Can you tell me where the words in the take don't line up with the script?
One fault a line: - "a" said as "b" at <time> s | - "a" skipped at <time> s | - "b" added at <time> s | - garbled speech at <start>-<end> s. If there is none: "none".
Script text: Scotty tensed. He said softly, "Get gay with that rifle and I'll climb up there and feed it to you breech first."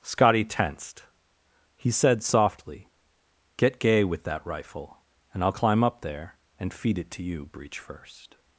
none